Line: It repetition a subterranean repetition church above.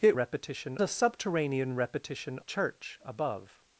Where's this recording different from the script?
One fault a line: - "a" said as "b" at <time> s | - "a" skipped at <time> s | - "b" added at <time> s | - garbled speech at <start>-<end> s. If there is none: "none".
none